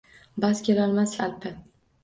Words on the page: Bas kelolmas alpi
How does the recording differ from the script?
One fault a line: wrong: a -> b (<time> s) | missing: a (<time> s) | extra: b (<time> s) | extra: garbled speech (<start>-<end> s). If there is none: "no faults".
no faults